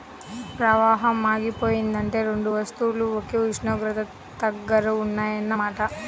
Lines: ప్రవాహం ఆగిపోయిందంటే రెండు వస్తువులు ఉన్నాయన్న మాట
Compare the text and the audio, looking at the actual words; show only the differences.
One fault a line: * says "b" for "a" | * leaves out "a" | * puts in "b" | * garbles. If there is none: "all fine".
* puts in "ఒకే ఉష్ణోగ్రత దగ్గర"